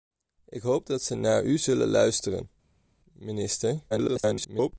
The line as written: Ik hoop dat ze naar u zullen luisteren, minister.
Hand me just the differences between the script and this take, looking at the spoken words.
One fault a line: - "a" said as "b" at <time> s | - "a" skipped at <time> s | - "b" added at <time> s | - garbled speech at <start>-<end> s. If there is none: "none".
- garbled speech at 3.9-4.7 s